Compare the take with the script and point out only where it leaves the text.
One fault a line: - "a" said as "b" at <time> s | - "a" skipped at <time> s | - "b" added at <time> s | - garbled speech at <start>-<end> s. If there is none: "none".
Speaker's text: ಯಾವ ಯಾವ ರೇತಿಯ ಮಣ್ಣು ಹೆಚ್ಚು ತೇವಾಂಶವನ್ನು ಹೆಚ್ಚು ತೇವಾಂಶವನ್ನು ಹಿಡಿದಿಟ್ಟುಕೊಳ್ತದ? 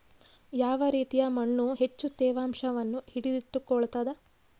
- "ಯಾವ" skipped at 0.8 s
- "ಹೆಚ್ಚು ತೇವಾಂಶವನ್ನು" skipped at 3.0 s